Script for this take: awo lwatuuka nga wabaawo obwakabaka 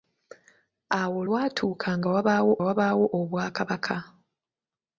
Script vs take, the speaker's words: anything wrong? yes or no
yes